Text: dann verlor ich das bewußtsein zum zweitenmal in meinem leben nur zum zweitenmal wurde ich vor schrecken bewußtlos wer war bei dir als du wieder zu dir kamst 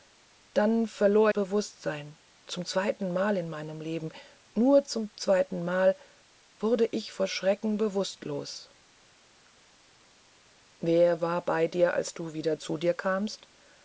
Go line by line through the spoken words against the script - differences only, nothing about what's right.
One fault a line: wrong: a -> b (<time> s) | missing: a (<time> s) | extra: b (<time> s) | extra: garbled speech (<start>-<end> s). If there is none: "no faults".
missing: ich das (1.3 s)